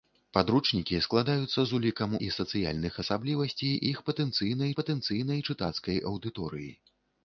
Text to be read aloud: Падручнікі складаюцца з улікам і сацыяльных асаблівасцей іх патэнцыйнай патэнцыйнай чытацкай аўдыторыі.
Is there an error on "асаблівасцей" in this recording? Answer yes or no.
no